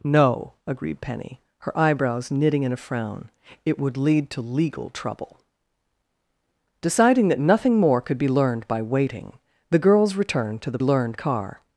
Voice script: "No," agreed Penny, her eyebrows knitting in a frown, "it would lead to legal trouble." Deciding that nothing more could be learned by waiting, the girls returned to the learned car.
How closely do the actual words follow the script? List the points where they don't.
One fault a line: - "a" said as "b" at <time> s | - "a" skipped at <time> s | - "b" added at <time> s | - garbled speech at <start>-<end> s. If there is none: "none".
none